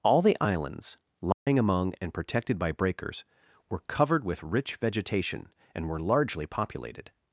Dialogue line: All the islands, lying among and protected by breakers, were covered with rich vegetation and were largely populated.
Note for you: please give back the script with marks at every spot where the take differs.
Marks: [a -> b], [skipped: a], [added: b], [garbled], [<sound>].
All the islands, lying [dropout] among and protected by breakers, were covered with rich vegetation and were largely populated.